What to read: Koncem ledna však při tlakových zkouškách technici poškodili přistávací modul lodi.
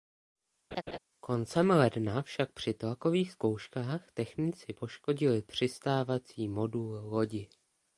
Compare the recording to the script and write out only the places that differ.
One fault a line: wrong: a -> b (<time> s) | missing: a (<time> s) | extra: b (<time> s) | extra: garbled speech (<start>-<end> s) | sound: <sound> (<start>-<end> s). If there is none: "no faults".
sound: laugh (0.7-1.0 s)